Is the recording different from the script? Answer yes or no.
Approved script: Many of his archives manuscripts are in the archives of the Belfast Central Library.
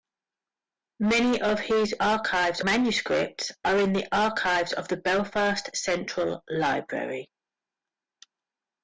no